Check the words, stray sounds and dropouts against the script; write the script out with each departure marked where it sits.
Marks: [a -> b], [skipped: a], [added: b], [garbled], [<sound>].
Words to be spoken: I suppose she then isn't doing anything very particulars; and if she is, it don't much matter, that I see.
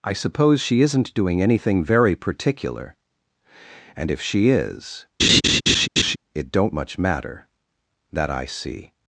I suppose she [skipped: then] isn't doing anything very [particulars; -> particular] and if she is, [laugh] it don't much matter, that I see.